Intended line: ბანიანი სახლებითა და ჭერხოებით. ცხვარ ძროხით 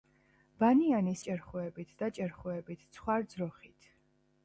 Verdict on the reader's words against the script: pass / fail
fail